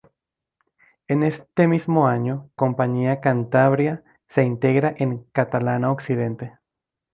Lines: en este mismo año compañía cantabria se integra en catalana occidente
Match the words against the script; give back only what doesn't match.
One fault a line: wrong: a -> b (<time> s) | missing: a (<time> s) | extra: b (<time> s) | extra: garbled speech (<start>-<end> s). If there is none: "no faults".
no faults